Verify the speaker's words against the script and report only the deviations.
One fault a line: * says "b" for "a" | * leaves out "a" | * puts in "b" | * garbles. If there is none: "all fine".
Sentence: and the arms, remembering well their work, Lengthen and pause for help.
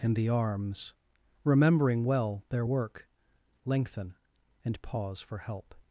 all fine